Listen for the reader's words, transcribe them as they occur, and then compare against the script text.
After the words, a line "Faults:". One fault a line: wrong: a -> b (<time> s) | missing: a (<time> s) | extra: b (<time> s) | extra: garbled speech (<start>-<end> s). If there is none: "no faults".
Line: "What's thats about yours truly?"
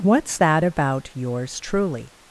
"What's that about yours truly?"
Faults:
wrong: thats -> that (0.4 s)